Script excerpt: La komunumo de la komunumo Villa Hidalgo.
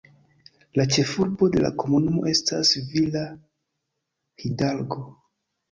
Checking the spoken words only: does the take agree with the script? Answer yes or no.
no